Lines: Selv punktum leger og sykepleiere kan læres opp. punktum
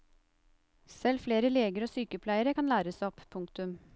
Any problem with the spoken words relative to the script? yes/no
yes